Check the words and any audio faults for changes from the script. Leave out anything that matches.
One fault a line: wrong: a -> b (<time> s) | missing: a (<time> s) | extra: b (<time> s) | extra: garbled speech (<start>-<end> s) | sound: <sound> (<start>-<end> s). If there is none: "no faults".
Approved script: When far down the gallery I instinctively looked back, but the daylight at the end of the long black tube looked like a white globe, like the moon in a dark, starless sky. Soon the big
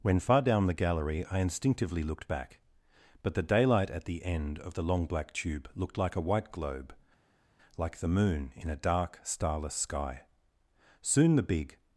no faults